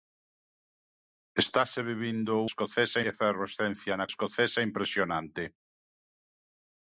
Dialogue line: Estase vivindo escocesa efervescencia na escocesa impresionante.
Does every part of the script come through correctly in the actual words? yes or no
yes